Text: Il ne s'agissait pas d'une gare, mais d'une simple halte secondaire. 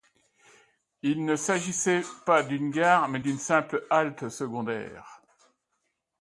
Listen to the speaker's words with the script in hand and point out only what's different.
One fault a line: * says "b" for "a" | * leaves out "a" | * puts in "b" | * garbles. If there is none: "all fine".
all fine